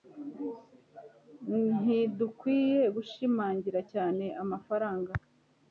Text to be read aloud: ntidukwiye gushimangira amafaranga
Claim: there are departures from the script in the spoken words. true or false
true